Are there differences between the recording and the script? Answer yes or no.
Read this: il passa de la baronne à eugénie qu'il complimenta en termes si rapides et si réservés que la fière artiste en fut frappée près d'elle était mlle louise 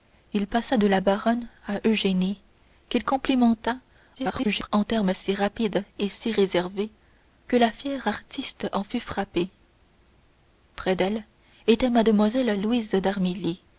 yes